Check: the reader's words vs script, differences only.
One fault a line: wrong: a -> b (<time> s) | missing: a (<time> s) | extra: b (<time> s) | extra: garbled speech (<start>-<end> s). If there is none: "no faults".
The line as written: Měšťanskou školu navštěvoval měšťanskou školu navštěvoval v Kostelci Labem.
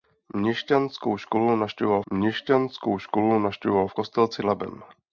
no faults